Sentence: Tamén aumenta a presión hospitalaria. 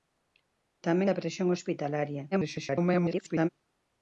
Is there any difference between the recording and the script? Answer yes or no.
yes